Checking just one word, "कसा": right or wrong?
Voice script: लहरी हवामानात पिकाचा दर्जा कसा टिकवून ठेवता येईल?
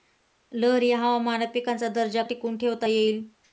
wrong